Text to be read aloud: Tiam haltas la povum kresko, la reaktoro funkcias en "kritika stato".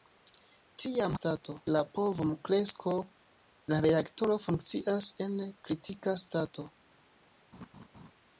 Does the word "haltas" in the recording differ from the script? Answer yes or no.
yes